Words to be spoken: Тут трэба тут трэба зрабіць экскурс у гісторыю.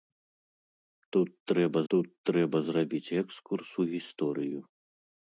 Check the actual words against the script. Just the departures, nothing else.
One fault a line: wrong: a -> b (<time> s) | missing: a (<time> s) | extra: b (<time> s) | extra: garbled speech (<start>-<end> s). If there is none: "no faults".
no faults